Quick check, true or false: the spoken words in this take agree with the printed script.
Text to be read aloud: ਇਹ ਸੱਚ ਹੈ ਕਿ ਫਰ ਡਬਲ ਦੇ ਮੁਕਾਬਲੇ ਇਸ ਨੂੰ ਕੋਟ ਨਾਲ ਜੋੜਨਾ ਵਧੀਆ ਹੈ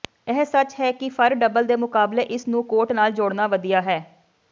true